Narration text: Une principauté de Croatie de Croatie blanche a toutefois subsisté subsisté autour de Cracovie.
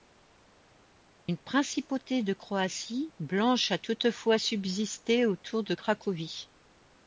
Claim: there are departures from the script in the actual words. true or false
true